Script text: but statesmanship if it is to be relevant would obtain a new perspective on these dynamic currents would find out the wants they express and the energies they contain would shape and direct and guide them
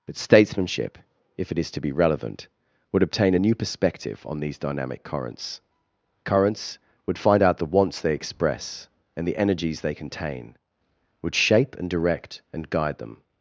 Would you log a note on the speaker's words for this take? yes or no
yes